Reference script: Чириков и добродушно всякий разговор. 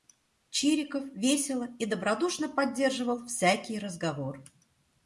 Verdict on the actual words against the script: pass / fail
fail